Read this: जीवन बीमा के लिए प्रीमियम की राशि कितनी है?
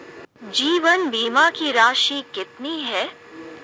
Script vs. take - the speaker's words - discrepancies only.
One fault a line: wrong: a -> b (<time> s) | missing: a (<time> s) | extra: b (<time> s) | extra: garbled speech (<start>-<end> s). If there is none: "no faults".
missing: के लिए प्रीमियम (1.5 s)